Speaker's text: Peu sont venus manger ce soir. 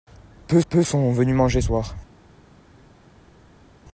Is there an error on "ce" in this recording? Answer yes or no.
yes